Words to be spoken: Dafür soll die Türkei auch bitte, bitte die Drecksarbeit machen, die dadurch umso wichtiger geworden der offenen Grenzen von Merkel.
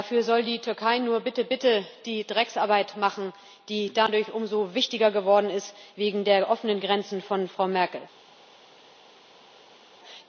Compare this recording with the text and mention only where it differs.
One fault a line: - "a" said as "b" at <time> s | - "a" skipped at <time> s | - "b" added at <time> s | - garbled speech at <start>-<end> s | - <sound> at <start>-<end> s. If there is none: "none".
- "auch" said as "nur" at 1.0 s
- "ist wegen" added at 5.5 s
- "Frau" added at 7.5 s